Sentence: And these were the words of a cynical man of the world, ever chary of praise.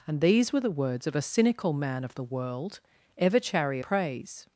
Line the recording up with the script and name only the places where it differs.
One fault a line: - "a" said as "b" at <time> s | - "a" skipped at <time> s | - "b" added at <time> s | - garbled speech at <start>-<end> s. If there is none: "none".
- "of" skipped at 3.8 s